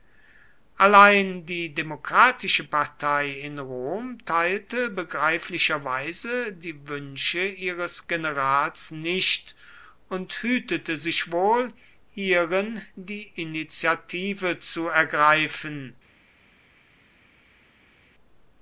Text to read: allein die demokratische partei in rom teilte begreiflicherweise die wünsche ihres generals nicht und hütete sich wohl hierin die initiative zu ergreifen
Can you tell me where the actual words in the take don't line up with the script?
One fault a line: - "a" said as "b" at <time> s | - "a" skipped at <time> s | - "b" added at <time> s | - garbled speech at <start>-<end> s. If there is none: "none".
none